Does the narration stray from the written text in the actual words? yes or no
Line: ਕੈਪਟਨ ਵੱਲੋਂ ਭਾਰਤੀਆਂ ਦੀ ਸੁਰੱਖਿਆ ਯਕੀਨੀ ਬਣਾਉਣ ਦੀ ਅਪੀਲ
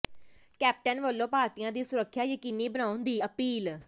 no